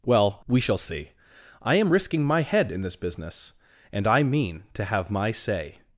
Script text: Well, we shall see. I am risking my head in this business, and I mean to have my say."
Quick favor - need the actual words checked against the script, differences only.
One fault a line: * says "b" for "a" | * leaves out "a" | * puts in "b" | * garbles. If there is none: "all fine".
all fine